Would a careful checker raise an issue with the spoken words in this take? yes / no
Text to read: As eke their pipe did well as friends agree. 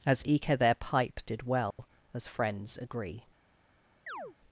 no